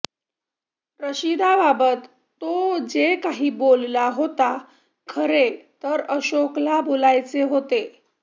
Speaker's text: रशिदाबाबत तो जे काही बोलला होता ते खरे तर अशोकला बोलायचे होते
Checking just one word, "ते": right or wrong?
wrong